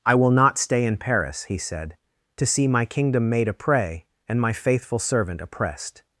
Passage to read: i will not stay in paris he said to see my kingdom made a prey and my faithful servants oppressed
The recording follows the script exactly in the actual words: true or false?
false